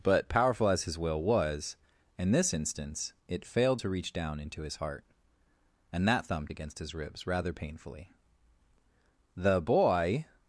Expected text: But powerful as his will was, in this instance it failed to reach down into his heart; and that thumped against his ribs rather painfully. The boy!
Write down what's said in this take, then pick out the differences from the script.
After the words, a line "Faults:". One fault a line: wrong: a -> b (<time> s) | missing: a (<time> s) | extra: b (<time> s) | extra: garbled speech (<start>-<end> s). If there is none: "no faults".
But powerful as his will was, in this instance it failed to reach down into his heart; and that thumped against his ribs rather painfully. The boy!
Faults:
no faults